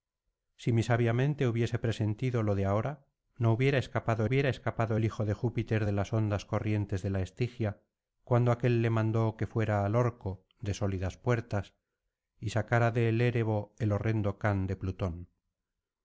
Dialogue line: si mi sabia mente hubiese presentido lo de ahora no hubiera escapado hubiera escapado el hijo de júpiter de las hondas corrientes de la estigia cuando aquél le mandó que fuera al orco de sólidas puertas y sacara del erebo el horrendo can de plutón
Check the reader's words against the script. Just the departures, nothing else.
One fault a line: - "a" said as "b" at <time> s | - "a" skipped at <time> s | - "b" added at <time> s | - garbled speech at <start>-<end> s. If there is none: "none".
none